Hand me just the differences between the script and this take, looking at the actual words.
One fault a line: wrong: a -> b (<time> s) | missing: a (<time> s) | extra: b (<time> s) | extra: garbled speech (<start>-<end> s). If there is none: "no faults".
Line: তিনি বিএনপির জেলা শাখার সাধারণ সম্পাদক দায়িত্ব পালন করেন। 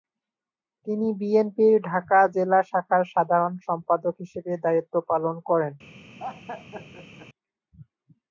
extra: ঢাকা (1.9 s)
extra: হিসেবে (4.2 s)